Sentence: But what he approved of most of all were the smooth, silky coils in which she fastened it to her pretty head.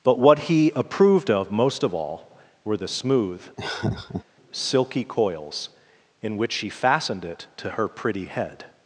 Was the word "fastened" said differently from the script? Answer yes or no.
no